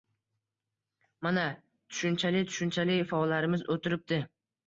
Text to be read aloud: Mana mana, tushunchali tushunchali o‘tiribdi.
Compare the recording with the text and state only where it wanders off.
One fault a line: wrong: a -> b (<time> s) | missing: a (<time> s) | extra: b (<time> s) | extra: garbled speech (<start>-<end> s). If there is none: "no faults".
wrong: mana -> tushunchali (1.9 s)
wrong: tushunchali -> faollarimiz (3.1 s)